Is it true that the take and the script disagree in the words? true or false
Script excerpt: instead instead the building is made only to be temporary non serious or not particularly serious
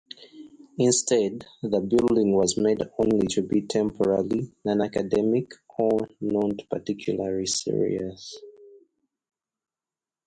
true